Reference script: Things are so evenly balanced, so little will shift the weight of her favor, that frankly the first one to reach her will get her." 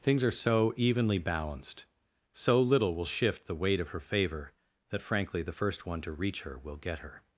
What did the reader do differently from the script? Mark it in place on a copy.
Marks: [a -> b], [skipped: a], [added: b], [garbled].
Things are so evenly balanced, so little will shift the weight of her favor, that frankly the first one to reach her will get her."